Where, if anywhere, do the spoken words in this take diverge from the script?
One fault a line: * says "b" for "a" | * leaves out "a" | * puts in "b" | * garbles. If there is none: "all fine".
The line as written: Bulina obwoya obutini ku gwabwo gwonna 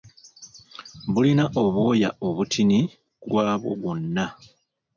all fine